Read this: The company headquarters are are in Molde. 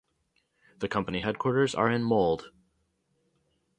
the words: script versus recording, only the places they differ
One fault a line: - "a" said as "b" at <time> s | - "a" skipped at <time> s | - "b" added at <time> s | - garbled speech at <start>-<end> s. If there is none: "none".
- "are" skipped at 1.9 s